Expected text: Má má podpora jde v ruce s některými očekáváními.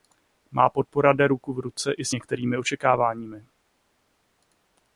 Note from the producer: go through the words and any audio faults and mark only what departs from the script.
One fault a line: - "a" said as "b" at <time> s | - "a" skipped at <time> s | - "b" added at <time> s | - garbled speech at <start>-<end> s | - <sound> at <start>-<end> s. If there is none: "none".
- "má" skipped at 0.7 s
- "ruku" added at 1.3 s
- "i" added at 1.9 s